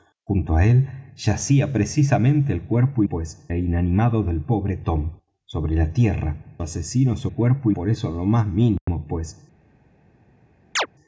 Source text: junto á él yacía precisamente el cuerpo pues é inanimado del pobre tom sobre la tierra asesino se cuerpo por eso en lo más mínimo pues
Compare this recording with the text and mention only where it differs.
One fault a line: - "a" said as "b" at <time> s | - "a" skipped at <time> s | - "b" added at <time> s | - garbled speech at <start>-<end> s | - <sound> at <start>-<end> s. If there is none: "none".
- dropout at 8.8-8.9 s
- chirp at 10.8-10.9 s